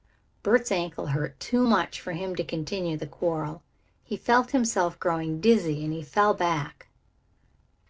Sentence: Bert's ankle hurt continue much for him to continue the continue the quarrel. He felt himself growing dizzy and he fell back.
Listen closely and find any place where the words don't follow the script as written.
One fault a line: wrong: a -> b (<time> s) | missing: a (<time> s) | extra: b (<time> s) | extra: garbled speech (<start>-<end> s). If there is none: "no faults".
wrong: continue -> too (1.4 s)
missing: continue the (3.1 s)